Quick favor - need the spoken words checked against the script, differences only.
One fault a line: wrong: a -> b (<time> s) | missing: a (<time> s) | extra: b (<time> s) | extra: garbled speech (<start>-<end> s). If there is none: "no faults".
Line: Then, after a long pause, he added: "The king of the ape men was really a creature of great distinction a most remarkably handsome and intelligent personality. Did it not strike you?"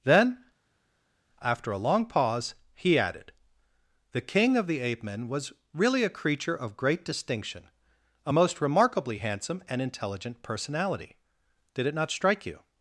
no faults